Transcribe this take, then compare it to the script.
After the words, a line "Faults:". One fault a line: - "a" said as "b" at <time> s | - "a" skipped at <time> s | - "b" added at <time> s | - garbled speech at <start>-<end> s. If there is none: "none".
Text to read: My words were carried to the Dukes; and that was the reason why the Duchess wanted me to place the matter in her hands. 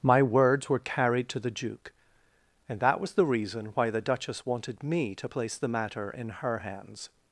My words were carried to the Duke; and that was the reason why the Duchess wanted me to place the matter in her hands.
Faults:
- "Dukes" said as "Duke" at 1.5 s